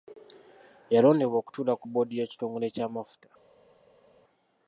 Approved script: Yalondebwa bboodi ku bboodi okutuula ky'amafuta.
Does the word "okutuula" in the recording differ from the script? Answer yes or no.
yes